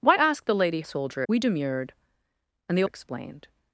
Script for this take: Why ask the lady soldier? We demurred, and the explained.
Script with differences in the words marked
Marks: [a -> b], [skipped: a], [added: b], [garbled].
Why ask the lady soldier? We demurred, and the explained.